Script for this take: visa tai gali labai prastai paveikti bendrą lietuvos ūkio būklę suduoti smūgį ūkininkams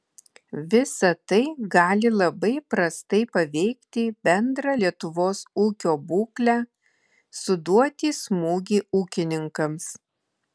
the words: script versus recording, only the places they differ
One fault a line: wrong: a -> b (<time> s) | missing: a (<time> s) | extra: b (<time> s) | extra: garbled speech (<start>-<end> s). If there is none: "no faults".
no faults